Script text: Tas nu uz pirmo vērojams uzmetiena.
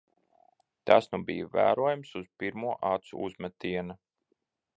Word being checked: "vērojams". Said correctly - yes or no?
no